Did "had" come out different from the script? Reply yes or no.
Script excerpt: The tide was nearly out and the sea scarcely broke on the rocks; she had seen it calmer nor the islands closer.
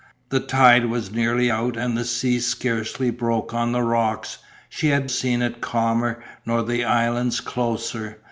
no